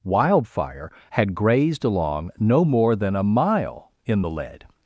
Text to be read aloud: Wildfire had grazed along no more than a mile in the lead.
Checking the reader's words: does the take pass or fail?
pass